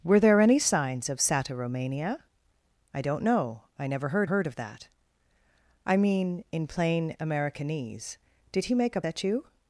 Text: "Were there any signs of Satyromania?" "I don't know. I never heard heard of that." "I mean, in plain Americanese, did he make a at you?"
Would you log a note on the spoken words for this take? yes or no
no